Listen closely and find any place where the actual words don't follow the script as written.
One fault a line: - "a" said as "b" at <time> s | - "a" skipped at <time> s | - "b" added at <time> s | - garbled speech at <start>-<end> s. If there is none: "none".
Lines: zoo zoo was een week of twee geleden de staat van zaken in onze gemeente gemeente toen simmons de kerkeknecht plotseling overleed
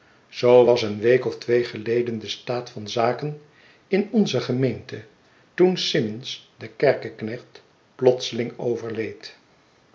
- "zoo" skipped at 0.7 s
- "gemeente" skipped at 5.0 s